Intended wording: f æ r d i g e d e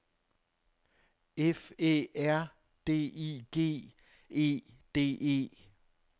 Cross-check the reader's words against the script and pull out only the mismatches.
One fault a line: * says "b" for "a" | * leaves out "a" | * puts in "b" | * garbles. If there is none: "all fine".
all fine